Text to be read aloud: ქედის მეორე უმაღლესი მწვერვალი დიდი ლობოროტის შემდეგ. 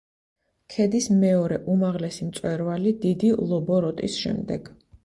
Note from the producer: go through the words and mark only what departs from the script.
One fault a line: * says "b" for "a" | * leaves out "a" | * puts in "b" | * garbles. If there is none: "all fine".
all fine